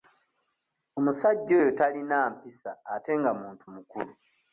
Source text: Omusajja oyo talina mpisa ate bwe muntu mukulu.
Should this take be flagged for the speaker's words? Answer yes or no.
yes